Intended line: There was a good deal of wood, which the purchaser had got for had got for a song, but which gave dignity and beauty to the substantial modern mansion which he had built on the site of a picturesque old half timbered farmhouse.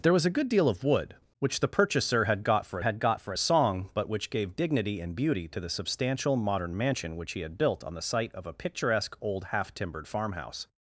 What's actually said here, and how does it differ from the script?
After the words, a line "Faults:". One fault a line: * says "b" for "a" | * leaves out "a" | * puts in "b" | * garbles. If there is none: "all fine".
There was a good deal of wood, which the purchaser had got for had got for a song, but which gave dignity and beauty to the substantial modern mansion which he had built on the site of a picturesque old half timbered farmhouse.
Faults:
all fine